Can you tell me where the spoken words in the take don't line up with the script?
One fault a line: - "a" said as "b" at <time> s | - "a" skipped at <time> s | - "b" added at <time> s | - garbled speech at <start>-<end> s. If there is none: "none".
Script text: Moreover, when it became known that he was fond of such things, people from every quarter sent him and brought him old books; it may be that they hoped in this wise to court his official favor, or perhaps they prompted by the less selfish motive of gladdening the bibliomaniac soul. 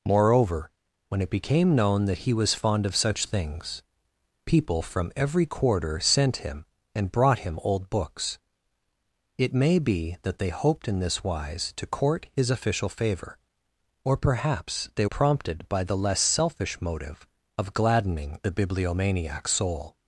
none